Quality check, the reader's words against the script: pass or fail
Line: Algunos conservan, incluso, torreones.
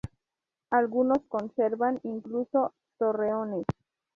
pass